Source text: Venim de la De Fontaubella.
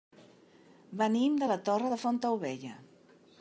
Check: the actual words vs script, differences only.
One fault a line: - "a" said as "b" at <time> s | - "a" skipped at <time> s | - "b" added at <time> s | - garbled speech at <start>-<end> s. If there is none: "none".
- "Torre" added at 1.7 s